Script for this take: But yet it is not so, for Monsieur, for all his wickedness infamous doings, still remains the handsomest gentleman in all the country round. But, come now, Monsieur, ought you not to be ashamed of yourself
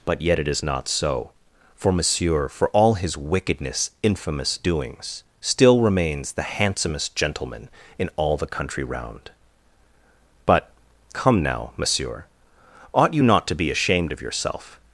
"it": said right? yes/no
yes